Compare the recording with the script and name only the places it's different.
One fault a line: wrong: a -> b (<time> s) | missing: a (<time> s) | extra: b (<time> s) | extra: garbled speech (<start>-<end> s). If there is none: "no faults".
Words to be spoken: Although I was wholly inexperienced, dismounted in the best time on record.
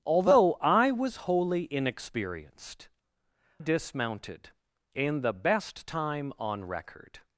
no faults